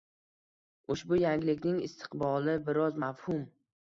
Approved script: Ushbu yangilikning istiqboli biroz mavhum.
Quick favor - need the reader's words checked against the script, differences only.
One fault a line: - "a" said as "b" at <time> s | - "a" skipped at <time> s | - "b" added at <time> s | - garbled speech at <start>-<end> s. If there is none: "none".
none